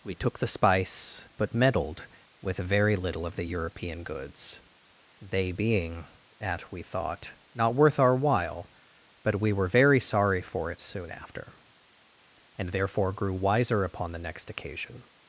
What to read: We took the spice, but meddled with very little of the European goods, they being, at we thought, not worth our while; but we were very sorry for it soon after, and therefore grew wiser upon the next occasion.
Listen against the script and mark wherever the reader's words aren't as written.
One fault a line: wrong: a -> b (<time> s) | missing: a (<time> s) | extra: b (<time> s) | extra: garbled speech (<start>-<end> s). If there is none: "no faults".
no faults